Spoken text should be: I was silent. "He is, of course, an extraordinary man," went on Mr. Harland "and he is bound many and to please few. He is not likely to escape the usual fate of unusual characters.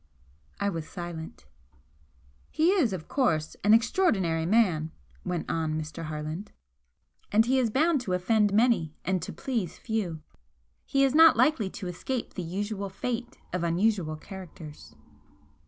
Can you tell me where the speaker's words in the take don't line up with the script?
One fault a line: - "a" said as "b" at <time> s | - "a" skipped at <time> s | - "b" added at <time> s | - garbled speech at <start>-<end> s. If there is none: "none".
- "to offend" added at 8.0 s